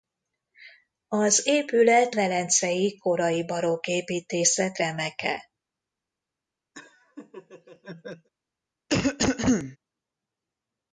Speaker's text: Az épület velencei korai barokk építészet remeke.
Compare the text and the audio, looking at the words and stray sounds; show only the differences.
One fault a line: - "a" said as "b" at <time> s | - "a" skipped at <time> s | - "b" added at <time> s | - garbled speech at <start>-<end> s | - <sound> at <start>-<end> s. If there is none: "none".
- laugh at 6.7-8.3 s
- cough at 8.9-9.8 s